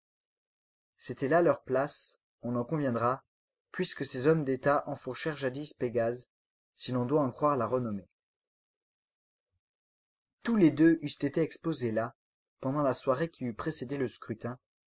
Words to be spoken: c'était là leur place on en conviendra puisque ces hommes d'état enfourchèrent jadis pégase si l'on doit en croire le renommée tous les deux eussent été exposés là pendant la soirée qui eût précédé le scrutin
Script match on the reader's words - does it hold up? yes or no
no